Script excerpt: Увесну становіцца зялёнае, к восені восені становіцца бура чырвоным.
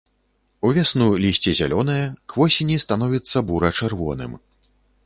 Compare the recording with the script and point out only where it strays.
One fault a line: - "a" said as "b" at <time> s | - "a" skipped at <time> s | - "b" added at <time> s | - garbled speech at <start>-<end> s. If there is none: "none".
- "становіцца" said as "лісце" at 1.2 s
- "восені" skipped at 2.8 s